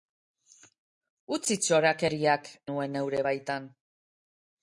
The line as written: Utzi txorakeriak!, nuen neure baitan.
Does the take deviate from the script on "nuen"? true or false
false